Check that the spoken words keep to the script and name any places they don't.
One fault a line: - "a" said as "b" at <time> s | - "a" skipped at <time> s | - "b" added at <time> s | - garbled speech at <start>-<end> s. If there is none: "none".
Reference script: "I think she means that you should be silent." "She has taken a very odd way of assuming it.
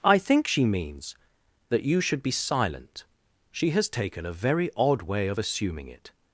none